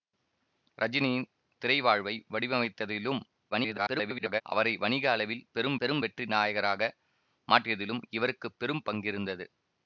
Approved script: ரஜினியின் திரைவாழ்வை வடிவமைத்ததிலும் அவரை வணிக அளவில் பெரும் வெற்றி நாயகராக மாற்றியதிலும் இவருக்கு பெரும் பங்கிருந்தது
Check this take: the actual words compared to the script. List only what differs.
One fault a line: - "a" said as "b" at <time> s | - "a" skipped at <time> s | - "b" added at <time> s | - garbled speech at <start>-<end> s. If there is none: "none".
- garbled speech at 3.5-4.4 s
- "பெரும்" added at 5.8 s